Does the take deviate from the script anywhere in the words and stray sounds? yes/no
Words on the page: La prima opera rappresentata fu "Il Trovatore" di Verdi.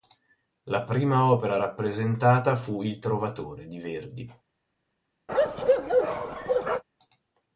yes